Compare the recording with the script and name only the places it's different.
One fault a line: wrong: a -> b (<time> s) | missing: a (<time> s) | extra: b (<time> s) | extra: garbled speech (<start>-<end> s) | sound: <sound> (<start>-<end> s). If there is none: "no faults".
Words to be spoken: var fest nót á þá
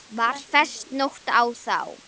no faults